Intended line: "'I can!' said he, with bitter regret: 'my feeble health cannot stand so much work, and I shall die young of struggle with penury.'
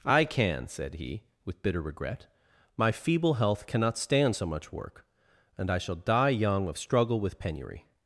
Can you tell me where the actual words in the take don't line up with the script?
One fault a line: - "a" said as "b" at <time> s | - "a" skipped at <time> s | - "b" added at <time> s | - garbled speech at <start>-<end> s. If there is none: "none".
none